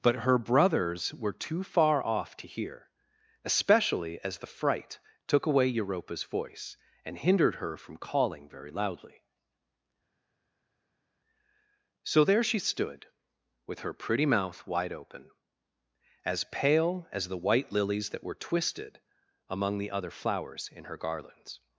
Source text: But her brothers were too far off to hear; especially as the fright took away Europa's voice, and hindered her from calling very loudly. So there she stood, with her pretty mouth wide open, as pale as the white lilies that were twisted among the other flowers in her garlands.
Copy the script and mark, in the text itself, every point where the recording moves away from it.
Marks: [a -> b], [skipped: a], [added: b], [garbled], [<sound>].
But her brothers were too far off to hear; especially as the fright took away Europa's voice, and hindered her from calling very loudly. So there she stood, with her pretty mouth wide open, as pale as the white lilies that were twisted among the other flowers in her garlands.